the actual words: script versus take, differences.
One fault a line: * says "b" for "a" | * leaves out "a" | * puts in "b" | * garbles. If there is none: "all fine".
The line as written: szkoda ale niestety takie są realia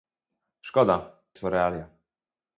* leaves out "ale niestety takie"